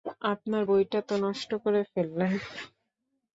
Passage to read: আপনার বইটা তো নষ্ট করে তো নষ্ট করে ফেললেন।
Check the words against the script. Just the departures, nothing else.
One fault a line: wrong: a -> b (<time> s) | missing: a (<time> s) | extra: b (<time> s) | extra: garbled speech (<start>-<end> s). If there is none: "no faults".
missing: তো নষ্ট করে (1.8 s)